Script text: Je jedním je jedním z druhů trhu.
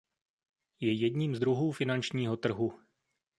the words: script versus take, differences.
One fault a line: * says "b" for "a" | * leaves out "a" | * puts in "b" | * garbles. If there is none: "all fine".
* leaves out "je jedním"
* puts in "finančního"